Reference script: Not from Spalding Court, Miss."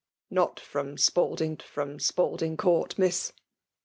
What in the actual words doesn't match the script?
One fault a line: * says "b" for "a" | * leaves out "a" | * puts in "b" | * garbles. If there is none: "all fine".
* puts in "from Spalding"